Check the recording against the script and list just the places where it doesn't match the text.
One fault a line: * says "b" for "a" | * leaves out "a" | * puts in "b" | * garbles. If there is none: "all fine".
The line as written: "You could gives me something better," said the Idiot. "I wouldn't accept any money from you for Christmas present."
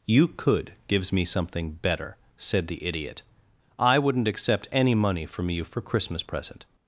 all fine